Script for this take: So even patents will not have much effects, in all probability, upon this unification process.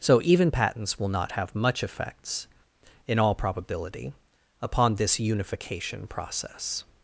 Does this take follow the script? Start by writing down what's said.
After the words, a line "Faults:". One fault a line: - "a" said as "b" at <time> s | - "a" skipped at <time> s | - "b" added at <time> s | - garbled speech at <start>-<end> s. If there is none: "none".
So even patents will not have much effects, in all probability, upon this unification process.
Faults:
none